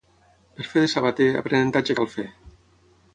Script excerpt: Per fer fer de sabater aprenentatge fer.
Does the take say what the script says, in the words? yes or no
no